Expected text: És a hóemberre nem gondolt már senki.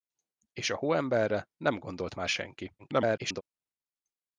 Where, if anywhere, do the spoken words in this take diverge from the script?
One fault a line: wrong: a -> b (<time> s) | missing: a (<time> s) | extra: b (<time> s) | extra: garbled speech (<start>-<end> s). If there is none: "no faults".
extra: garbled speech (2.8-3.4 s)